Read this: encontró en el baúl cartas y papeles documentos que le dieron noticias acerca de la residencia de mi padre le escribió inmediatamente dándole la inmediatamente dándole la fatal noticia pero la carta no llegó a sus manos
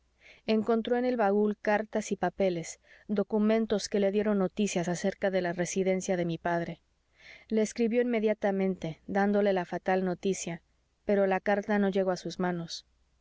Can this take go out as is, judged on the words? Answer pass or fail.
fail